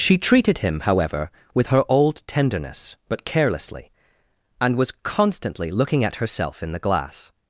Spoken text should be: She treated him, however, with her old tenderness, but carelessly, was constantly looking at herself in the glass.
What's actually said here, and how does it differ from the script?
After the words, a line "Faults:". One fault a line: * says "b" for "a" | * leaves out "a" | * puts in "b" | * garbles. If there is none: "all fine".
She treated him, however, with her old tenderness, but carelessly, and was constantly looking at herself in the glass.
Faults:
* puts in "and"